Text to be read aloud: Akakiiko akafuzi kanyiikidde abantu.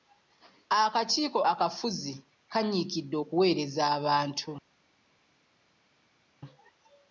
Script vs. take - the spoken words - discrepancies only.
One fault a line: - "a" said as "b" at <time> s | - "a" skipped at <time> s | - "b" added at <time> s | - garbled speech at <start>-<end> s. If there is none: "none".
- "okuweereza" added at 3.2 s